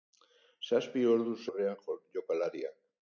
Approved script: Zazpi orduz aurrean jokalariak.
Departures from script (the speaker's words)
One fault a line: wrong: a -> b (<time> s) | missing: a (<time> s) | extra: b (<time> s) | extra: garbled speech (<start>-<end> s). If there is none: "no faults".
no faults